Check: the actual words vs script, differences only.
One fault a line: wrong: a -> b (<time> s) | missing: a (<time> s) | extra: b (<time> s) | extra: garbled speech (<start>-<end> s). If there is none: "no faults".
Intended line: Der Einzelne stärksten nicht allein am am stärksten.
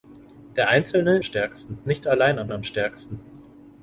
no faults